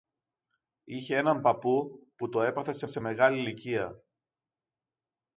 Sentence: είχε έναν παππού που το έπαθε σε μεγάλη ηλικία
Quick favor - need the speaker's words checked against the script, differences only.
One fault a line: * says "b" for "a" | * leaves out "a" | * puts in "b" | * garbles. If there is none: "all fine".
* puts in "σε"